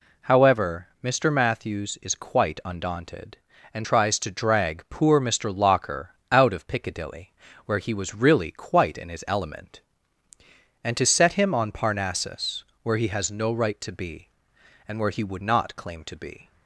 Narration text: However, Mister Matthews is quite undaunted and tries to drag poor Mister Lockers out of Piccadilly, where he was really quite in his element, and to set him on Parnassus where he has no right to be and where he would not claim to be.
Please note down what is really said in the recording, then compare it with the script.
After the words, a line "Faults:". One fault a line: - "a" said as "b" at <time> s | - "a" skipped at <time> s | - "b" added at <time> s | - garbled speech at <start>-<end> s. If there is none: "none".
However, Mister Matthews is quite undaunted and tries to drag poor Mister Locker out of Piccadilly, where he was really quite in his element, and to set him on Parnassus where he has no right to be and where he would not claim to be.
Faults:
- "Lockers" said as "Locker" at 5.5 s